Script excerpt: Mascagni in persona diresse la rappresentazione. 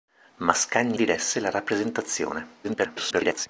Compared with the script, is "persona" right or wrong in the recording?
wrong